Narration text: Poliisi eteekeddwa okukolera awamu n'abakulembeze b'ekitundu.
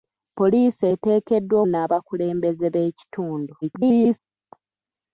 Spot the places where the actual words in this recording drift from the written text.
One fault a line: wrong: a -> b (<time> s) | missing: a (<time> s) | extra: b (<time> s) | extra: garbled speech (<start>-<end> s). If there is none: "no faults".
missing: okukolera awamu (1.6 s)
extra: garbled speech (3.6-4.2 s)